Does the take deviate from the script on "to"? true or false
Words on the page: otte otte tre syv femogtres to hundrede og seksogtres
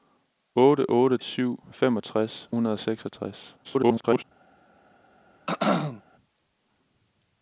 true